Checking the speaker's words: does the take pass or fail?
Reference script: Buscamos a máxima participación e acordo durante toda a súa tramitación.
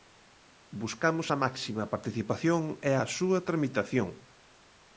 fail